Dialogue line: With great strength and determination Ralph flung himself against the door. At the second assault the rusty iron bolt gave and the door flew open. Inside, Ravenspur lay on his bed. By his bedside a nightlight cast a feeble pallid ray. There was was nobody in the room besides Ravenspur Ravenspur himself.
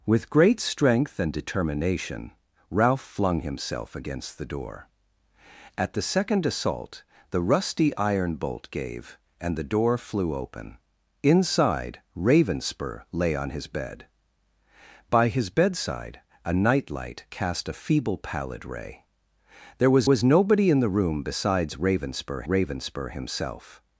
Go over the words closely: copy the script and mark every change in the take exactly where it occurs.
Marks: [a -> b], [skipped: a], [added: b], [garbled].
With great strength and determination Ralph flung himself against the door. At the second assault the rusty iron bolt gave and the door flew open. Inside, Ravenspur lay on his bed. By his bedside a nightlight cast a feeble pallid ray. There was was nobody in the room besides Ravenspur Ravenspur himself.